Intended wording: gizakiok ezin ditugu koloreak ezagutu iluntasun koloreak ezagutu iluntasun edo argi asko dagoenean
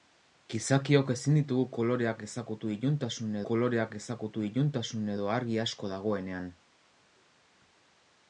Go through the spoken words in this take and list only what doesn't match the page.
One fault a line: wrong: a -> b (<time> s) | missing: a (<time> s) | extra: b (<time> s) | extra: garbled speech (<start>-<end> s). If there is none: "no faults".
no faults